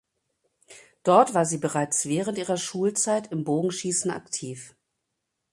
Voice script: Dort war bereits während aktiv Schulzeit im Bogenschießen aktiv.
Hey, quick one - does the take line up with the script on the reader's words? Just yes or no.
no